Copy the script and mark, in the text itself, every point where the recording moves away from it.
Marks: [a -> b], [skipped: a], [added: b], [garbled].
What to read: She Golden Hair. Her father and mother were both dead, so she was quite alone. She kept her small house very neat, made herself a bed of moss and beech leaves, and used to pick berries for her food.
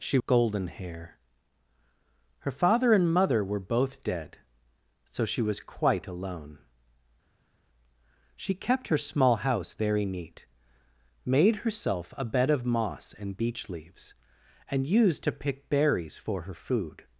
She Golden Hair. Her father and mother were both dead, so she was quite alone. She kept her small house very neat, made herself a bed of moss and beech leaves, and used to pick berries for her food.